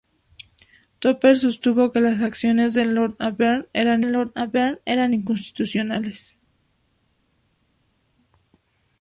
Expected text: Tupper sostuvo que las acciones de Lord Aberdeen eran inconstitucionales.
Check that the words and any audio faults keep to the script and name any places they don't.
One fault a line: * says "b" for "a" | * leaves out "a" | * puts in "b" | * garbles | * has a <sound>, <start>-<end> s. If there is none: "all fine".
* puts in "Lord Aberdeen eran"